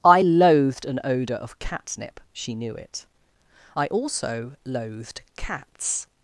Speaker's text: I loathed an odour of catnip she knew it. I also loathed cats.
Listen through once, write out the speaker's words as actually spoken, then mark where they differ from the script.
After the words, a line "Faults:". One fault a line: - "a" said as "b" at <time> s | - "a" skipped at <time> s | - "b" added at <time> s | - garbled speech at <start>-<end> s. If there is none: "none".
I loathed an odour of catnip she knew it. I also loathed cats.
Faults:
none